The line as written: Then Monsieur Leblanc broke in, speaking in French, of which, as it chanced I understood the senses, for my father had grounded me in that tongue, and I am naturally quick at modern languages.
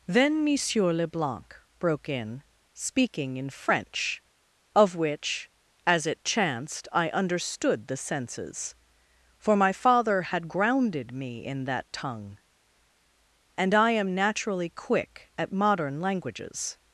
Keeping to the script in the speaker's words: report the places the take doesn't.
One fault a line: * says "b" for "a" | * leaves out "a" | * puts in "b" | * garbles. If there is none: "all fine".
all fine